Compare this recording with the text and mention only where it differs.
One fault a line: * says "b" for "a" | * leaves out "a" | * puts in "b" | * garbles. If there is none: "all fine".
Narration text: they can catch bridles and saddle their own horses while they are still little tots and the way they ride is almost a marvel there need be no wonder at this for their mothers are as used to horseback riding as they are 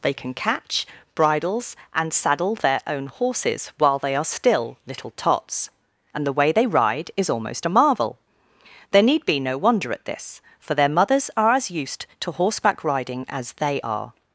all fine